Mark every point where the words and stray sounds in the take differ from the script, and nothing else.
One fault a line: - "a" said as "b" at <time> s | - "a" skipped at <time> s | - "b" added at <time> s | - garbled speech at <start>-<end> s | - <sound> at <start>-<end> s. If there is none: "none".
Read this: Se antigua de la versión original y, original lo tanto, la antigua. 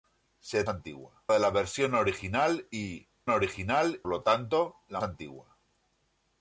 none